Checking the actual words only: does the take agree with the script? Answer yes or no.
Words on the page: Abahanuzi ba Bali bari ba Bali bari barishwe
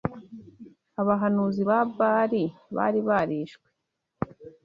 no